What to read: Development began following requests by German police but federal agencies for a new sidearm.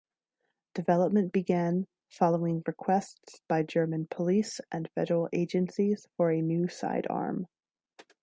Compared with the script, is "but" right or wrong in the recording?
wrong